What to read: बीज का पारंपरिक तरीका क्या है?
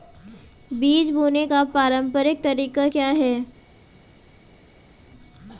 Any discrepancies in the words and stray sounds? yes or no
yes